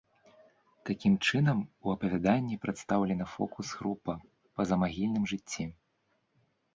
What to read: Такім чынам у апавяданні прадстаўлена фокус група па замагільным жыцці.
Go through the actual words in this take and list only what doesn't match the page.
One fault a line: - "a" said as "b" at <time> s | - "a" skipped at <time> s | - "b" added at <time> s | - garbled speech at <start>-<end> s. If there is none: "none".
none